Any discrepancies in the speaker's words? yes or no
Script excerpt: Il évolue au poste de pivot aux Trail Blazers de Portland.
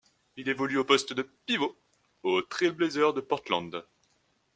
no